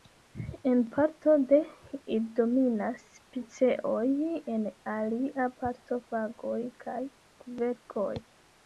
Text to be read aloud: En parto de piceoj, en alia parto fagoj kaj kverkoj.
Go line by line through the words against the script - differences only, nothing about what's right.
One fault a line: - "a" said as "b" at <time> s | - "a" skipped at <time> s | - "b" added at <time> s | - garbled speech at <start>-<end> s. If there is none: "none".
- "ili dominas" added at 2.0 s